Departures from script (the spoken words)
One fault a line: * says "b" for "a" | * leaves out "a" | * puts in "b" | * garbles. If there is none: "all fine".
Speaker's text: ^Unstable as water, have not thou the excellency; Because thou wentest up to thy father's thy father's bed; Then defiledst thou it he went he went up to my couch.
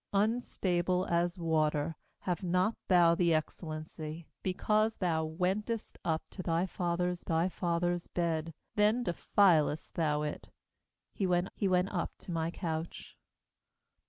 all fine